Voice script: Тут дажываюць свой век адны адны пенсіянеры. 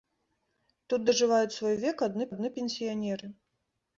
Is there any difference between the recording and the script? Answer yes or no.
no